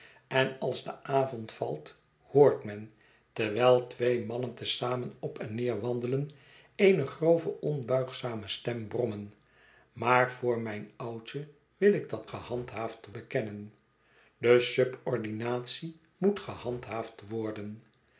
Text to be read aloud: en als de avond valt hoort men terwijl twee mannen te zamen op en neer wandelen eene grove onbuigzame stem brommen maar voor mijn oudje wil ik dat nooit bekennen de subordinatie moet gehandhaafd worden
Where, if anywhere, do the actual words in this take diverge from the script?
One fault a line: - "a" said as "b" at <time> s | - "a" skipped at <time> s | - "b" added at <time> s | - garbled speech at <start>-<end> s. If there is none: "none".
- "nooit" said as "gehandhaafd" at 12.2 s